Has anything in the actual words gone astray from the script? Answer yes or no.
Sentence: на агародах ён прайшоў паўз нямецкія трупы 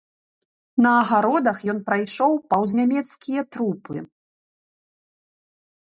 no